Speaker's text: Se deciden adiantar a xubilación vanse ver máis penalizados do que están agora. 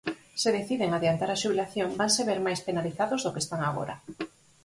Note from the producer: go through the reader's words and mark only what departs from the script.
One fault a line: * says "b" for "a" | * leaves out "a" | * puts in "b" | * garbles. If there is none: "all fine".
all fine